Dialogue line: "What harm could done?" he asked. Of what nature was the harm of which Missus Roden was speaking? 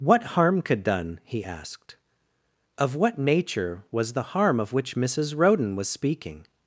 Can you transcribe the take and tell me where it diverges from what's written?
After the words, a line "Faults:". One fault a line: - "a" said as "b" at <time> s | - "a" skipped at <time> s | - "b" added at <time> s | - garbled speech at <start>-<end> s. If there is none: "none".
"What harm could done?" he asked. Of what nature was the harm of which Missus Roden was speaking?
Faults:
none